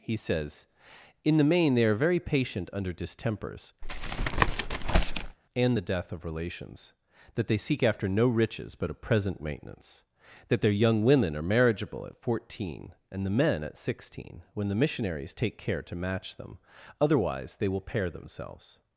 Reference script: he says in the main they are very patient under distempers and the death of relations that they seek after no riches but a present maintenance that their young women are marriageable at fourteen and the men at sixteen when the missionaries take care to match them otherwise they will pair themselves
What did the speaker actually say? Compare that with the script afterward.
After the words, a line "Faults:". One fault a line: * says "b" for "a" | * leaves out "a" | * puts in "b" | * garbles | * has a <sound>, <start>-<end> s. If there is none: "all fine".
he says in the main they are very patient under distempers and the death of relations that they seek after no riches but a present maintenance that their young women are marriageable at fourteen and the men at sixteen when the missionaries take care to match them otherwise they will pair themselves
Faults:
* has a tap, 3.8-5.4 s